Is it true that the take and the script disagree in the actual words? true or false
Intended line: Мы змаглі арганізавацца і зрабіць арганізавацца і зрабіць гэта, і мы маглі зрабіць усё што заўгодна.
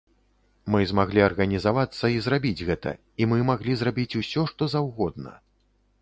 true